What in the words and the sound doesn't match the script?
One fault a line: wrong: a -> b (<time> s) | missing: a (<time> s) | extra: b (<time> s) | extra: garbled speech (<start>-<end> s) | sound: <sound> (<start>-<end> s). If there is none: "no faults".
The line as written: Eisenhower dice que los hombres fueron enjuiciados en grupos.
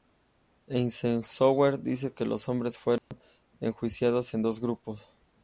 sound: dropout (3.0-3.1 s)
extra: dos (4.4 s)